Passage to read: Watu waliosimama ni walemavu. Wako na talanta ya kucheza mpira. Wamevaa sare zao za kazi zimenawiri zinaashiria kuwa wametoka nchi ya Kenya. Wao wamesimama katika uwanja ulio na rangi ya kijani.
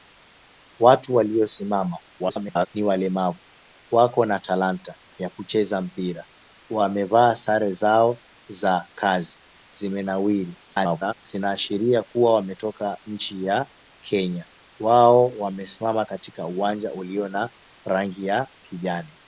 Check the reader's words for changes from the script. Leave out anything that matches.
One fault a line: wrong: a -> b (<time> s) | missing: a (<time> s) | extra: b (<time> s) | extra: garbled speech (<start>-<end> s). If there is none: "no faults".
extra: garbled speech (2.2-2.7 s)
extra: garbled speech (10.7-11.1 s)